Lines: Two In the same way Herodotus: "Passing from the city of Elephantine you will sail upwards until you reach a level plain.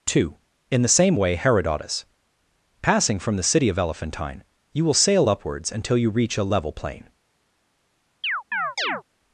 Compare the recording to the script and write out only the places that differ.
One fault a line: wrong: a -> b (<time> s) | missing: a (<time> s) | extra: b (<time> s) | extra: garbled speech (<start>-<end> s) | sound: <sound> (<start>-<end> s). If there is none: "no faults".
sound: chirp (8.2-9.0 s)